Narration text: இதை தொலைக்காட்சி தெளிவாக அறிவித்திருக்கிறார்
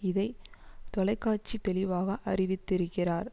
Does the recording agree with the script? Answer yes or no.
yes